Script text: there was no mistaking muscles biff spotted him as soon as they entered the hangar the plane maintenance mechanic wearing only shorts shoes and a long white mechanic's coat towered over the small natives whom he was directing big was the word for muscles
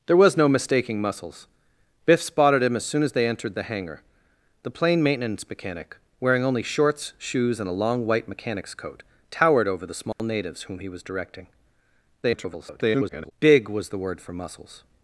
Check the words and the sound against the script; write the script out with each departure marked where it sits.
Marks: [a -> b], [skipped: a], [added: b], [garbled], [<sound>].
there was no mistaking muscles biff spotted him as soon as they entered the hangar the plane maintenance mechanic wearing only shorts shoes and a long white mechanic's coat towered over the small [dropout] natives whom he was directing [garbled] big was the word for muscles